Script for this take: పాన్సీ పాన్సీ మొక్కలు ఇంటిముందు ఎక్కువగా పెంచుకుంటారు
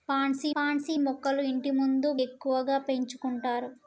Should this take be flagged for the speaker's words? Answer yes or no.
no